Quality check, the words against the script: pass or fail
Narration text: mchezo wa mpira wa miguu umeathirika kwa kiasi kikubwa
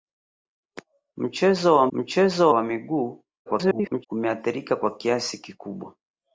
fail